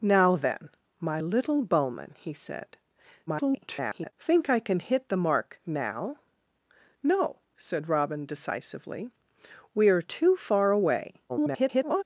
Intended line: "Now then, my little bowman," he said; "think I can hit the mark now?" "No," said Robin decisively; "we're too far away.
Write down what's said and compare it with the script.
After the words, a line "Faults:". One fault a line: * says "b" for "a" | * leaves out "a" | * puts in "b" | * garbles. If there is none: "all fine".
"Now then, my little bowman," he said; [garbled] "think I can hit the mark now?" "No," said Robin decisively; "we're too far away. [garbled]
Faults:
* garbles
* garbles